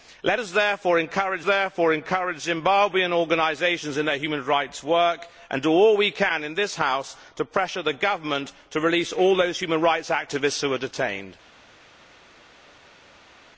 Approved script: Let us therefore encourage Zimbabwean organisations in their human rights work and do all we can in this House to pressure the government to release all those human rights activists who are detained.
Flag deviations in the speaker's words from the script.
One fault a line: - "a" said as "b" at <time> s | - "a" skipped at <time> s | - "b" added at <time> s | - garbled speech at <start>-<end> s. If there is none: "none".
- "therefore encourage" added at 1.4 s